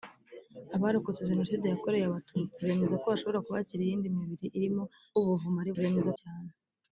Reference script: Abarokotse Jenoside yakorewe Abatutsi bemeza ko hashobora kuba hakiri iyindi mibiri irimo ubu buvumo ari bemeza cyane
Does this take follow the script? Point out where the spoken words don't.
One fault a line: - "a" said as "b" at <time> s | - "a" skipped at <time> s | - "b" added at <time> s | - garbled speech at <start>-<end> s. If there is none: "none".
none